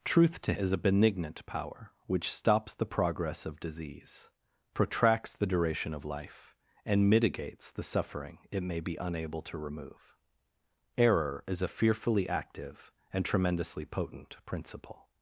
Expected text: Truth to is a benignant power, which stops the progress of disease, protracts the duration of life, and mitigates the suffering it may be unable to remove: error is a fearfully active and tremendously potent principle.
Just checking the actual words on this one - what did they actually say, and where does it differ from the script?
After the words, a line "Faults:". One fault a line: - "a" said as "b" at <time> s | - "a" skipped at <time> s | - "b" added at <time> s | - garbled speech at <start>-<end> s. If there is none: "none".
Truth to is a benignant power, which stops the progress of disease, protracts the duration of life, and mitigates the suffering it may be unable to remove: error is a fearfully active and tremendously potent principle.
Faults:
none